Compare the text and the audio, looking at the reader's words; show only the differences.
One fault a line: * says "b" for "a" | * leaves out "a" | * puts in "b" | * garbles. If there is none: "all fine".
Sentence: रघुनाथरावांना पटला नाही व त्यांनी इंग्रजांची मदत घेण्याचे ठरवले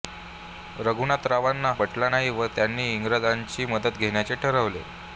all fine